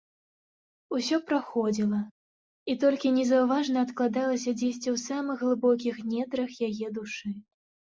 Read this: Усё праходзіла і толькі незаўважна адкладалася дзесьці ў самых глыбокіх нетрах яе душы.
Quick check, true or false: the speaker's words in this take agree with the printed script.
true